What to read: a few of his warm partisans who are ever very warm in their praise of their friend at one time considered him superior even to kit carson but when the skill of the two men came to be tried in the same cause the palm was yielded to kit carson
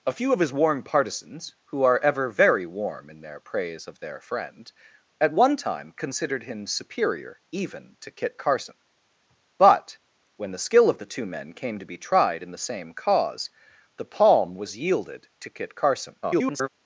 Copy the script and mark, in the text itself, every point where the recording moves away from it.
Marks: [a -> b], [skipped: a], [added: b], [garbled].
a few of his warm partisans who are ever very warm in their praise of their friend at one time considered him superior even to kit carson but when the skill of the two men came to be tried in the same cause the palm was yielded to kit carson [garbled]